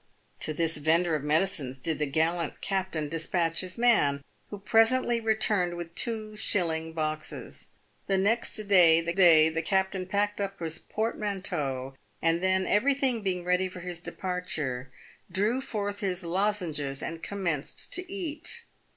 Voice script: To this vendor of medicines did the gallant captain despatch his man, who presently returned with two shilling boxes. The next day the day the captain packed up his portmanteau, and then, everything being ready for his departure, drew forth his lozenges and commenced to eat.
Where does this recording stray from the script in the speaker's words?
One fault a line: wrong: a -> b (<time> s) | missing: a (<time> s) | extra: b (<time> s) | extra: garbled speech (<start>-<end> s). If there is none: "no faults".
no faults